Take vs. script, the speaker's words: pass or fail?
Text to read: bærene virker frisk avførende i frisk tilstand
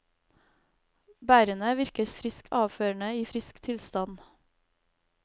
pass